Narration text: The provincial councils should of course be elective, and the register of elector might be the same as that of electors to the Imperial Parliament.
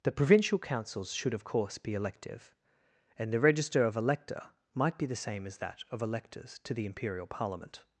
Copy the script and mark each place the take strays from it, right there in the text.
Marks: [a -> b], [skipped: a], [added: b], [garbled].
The provincial councils should of course be elective, and the register of elector might be the same as that of electors to the Imperial Parliament.